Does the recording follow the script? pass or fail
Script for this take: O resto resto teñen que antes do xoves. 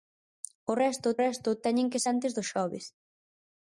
pass